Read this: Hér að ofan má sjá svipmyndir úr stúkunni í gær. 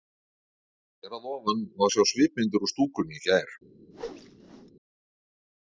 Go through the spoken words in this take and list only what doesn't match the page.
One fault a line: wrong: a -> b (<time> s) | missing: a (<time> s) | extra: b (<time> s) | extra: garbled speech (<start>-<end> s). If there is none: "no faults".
no faults